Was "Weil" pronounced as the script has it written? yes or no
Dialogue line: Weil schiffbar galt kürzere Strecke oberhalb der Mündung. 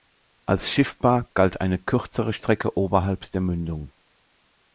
no